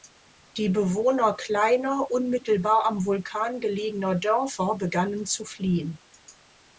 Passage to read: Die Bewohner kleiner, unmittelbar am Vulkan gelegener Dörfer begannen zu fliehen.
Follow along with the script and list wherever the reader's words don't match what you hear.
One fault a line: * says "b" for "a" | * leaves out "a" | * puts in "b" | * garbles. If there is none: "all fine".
all fine